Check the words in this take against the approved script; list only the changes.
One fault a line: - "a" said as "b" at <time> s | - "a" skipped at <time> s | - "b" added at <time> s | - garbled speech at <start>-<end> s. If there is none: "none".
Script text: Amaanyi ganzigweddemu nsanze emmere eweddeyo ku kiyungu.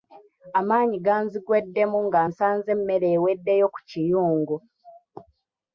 - "nga" added at 2.1 s